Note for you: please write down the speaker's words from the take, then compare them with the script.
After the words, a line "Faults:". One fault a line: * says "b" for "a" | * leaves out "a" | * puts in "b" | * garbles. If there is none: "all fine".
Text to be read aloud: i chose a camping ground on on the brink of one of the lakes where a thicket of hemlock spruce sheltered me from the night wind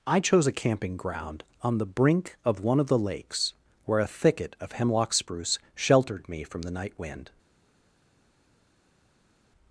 i chose a camping ground on the brink of one of the lakes where a thicket of hemlock spruce sheltered me from the night wind
Faults:
* leaves out "on"